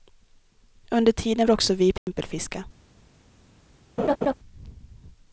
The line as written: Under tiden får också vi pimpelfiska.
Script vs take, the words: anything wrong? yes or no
yes